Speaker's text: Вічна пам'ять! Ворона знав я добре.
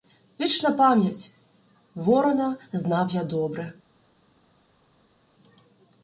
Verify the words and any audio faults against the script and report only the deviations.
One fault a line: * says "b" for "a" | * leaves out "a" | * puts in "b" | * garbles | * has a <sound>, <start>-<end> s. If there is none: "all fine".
all fine